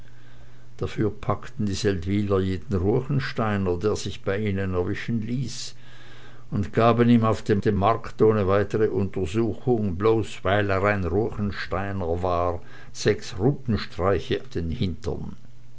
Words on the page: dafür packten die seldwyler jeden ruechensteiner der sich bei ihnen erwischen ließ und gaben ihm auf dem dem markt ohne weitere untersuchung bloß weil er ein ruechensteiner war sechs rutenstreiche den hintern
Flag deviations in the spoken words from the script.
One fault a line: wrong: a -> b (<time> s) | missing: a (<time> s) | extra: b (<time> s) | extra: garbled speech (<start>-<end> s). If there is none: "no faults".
no faults